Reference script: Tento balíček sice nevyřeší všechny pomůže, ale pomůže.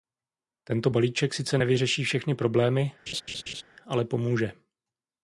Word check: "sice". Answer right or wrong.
right